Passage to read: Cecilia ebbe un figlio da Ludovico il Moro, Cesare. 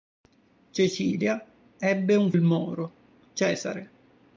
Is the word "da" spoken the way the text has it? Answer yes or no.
no